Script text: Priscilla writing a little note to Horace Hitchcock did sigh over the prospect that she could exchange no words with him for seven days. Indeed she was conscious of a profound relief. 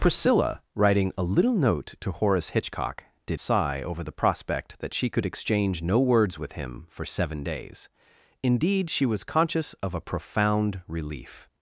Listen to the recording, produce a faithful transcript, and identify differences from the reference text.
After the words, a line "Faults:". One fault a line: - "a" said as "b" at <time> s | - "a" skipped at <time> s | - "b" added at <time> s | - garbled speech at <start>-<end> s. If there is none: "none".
Priscilla writing a little note to Horace Hitchcock did sigh over the prospect that she could exchange no words with him for seven days. Indeed she was conscious of a profound relief.
Faults:
none